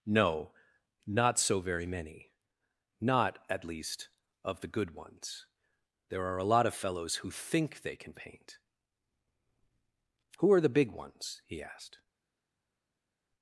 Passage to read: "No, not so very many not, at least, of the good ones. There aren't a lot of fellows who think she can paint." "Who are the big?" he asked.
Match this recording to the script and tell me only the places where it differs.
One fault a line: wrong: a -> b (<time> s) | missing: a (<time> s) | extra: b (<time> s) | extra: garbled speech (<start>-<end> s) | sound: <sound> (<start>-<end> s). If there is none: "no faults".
wrong: aren't -> are (6.2 s)
wrong: she -> they (7.8 s)
extra: ones (10.9 s)